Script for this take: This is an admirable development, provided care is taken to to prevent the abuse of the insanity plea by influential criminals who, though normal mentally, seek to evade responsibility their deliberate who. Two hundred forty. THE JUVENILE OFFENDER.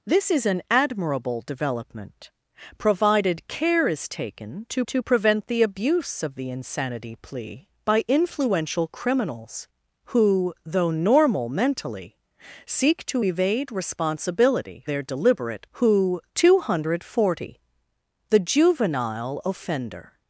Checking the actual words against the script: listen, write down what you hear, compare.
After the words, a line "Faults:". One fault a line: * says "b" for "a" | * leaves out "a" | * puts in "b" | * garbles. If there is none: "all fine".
This is an admirable development, provided care is taken to to prevent the abuse of the insanity plea by influential criminals who, though normal mentally, seek to evade responsibility their deliberate who. Two hundred forty. THE JUVENILE OFFENDER.
Faults:
all fine